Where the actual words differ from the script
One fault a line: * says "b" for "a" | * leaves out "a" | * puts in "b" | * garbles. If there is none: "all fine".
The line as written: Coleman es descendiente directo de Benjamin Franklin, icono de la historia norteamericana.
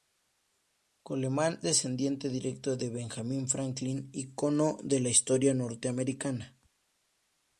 * leaves out "es"